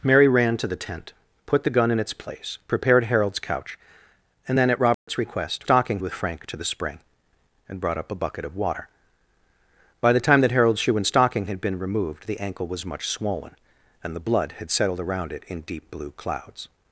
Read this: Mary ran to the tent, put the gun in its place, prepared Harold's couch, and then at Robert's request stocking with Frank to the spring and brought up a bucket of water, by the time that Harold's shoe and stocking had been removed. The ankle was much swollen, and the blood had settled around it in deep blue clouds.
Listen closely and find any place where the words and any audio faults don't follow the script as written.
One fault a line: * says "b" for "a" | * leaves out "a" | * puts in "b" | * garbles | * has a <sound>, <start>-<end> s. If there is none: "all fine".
* has a dropout, 4.9-5.1 s